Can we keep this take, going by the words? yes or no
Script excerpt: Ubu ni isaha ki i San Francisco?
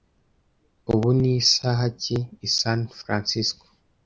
yes